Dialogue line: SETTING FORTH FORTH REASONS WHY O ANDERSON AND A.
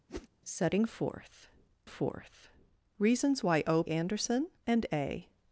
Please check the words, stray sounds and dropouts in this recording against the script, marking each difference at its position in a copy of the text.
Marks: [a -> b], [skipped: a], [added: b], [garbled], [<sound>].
[whoosh] SETTING FORTH FORTH REASONS WHY O ANDERSON AND A.